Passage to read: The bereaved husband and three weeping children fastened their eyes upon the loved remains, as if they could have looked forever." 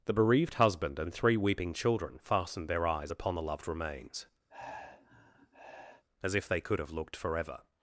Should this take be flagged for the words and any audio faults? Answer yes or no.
yes